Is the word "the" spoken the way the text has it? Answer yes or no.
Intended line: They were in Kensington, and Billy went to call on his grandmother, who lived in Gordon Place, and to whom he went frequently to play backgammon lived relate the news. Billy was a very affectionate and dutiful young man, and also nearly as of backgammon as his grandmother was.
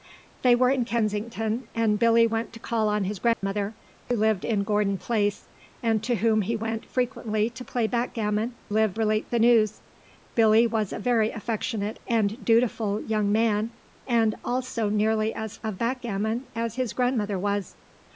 yes